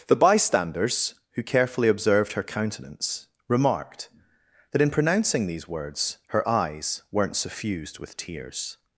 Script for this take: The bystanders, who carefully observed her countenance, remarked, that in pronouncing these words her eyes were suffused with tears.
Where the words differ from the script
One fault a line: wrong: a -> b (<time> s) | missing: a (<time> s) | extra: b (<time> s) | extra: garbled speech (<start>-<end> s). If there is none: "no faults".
wrong: were -> weren't (7.1 s)